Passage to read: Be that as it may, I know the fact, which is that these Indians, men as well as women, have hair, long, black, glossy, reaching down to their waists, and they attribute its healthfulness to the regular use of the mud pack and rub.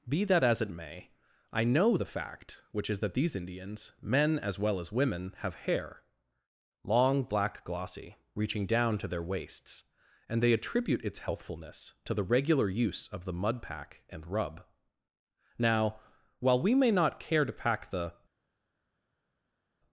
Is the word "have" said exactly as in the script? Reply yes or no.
yes